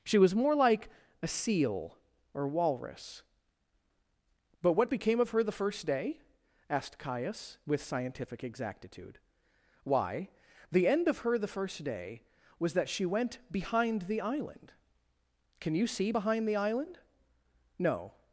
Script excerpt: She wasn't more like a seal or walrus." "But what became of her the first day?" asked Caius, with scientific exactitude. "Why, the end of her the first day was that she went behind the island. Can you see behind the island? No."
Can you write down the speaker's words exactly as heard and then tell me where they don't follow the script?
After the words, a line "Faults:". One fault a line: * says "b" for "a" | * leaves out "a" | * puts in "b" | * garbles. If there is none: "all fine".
She was more like a seal or walrus." "But what became of her the first day?" asked Caius, with scientific exactitude. "Why, the end of her the first day was that she went behind the island. Can you see behind the island? No."
Faults:
* says "was" for "wasn't"